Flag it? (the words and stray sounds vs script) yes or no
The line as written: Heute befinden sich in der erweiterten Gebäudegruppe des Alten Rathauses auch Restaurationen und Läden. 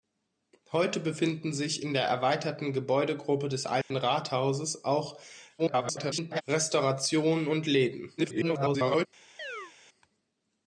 yes